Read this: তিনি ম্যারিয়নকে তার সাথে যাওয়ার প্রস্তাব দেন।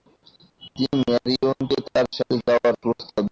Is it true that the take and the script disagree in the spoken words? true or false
false